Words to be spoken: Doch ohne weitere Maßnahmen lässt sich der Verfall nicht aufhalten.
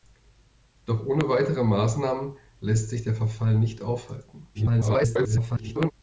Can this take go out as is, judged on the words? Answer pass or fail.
fail